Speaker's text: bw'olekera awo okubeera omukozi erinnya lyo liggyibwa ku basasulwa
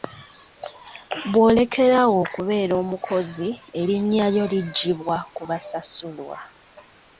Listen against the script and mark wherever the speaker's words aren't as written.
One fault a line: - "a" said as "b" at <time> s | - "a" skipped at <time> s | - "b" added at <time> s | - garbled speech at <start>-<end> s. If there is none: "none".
none